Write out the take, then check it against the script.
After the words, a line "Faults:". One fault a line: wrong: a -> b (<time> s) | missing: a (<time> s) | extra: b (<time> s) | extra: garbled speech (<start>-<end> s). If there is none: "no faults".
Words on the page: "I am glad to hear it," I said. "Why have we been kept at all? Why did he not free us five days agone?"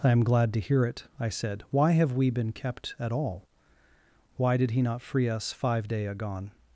"I am glad to hear it," I said. "Why have we been kept at all? Why did he not free us five day agone?"
Faults:
wrong: days -> day (5.9 s)